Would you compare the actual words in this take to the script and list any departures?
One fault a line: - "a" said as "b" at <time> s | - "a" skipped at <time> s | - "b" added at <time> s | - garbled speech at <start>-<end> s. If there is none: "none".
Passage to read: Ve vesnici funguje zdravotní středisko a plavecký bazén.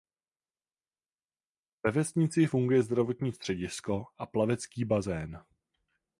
none